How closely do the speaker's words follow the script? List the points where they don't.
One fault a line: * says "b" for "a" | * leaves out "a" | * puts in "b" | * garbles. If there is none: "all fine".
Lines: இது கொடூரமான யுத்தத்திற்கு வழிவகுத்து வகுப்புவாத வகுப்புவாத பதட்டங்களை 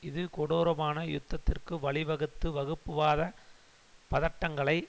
* leaves out "வகுப்புவாத"